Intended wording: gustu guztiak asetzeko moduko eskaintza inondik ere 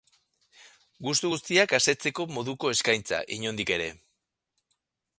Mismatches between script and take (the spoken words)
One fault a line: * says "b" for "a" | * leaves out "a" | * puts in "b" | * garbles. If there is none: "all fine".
all fine